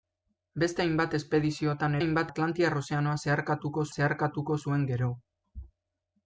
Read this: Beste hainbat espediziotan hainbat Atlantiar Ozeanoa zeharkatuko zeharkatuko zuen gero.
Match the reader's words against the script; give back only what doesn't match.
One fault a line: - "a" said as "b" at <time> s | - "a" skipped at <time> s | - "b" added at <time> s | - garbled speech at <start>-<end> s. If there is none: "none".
none